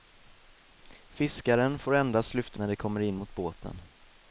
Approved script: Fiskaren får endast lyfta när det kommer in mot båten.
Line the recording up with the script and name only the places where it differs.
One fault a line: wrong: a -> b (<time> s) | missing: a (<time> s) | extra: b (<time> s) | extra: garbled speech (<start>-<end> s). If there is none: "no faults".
no faults